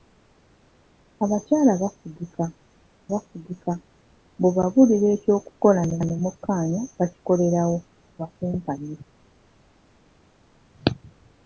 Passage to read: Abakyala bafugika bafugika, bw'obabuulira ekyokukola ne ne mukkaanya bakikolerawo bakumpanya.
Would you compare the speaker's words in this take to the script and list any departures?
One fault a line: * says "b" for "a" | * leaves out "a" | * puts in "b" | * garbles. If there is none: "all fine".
all fine